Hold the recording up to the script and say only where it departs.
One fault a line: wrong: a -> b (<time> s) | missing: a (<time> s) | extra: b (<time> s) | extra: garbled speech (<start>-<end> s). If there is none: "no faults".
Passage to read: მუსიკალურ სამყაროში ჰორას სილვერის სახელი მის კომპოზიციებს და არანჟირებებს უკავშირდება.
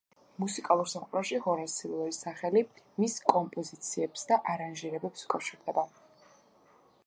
no faults